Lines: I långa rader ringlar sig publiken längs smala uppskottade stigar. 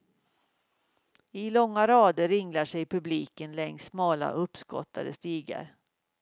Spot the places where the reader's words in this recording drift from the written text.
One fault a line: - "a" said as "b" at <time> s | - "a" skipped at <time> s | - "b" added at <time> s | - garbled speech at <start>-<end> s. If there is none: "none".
none